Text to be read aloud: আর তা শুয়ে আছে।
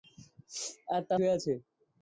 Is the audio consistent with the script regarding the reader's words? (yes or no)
yes